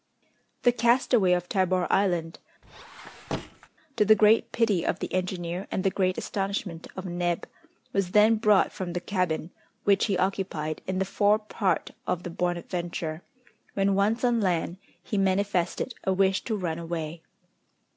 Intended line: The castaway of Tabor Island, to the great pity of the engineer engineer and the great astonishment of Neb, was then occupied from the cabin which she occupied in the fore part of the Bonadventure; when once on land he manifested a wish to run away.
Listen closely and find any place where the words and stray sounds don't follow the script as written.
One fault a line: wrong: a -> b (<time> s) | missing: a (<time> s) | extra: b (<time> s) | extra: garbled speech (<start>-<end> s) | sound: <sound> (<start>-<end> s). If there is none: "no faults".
sound: squeak (2.6-3.7 s)
missing: engineer (5.7 s)
wrong: occupied -> brought (8.3 s)
wrong: she -> he (10.1 s)